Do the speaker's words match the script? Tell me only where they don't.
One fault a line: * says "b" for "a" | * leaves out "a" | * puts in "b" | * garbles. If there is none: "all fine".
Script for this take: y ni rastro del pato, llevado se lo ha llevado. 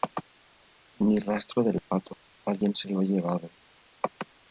* says "alguien" for "llevado"